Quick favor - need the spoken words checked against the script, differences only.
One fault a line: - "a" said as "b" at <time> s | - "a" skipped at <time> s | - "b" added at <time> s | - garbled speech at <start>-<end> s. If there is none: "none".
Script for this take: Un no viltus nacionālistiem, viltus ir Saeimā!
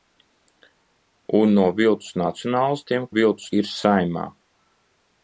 none